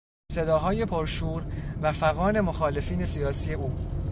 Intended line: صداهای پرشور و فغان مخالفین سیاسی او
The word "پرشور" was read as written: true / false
true